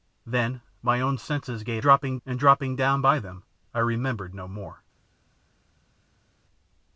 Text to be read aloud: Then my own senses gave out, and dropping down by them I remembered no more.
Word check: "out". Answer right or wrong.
wrong